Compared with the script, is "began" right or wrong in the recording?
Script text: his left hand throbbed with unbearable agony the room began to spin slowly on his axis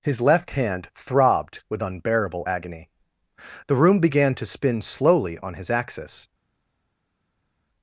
right